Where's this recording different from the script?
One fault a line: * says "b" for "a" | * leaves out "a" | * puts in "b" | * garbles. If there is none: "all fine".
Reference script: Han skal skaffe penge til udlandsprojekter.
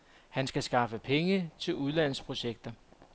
all fine